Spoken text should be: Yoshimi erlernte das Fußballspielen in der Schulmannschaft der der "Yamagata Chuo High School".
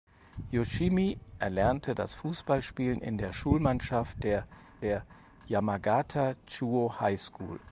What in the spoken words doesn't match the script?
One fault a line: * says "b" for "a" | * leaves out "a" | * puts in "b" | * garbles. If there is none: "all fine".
all fine